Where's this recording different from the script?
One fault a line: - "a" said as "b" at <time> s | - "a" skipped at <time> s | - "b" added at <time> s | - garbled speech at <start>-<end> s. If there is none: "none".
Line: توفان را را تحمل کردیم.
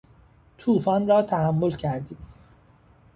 - "را" skipped at 1.2 s